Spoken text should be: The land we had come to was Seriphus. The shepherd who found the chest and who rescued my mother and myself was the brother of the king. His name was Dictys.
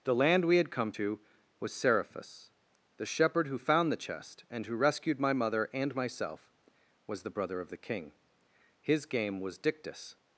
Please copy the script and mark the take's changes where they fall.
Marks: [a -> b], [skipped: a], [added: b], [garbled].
The land we had come to was Seriphus. The shepherd who found the chest and who rescued my mother and myself was the brother of the king. His [name -> game] was Dictys.